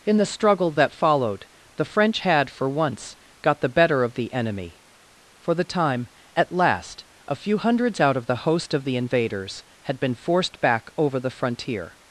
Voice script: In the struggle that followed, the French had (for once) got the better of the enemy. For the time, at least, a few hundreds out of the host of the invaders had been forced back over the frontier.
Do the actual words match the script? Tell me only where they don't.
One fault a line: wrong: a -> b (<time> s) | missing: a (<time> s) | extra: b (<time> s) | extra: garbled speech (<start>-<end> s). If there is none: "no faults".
wrong: least -> last (6.5 s)